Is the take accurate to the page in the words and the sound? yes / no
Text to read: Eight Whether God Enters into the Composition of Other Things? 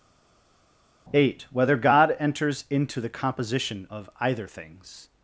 no